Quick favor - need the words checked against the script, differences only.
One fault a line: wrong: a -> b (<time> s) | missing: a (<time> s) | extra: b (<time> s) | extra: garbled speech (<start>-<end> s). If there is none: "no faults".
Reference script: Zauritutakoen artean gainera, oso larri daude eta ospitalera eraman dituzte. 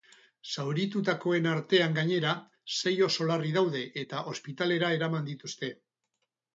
extra: sei (2.8 s)